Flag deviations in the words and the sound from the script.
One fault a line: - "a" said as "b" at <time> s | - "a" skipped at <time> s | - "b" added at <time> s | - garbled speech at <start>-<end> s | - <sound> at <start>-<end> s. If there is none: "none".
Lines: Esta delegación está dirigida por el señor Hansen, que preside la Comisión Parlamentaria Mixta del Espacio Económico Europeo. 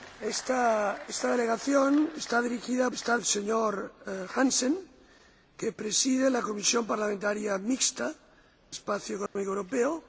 - "por" said as "está" at 2.9 s
- "del" skipped at 8.1 s
- dropout at 9.3-9.4 s